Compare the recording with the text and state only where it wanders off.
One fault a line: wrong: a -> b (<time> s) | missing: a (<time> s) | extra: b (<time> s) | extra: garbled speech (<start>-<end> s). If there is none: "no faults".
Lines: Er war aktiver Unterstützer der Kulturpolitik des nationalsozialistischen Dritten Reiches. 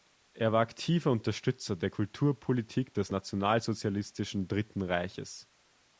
no faults